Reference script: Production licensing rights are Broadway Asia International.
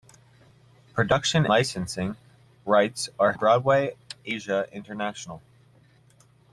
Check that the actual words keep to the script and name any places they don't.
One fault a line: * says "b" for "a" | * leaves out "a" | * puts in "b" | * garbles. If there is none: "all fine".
all fine